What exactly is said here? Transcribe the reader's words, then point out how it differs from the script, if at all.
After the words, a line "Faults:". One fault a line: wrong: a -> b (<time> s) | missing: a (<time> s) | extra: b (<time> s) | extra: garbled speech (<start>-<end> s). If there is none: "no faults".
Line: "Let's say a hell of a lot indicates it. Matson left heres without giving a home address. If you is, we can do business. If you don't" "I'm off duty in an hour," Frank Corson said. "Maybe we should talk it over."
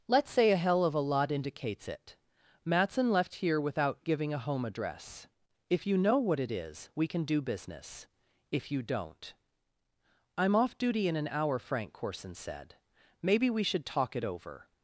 "Let's say a hell of a lot indicates it. Matson left here without giving a home address. If you know what it is, we can do business. If you don't" "I'm off duty in an hour," Frank Corson said. "Maybe we should talk it over."
Faults:
wrong: heres -> here (3.4 s)
extra: know what it (6.0 s)